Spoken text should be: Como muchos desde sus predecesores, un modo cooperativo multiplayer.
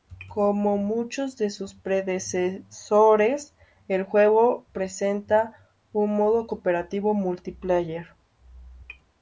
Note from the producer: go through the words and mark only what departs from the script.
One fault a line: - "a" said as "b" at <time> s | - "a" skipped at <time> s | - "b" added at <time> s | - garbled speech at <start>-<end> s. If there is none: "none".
- "desde" said as "de" at 1.4 s
- "el juego presenta" added at 3.9 s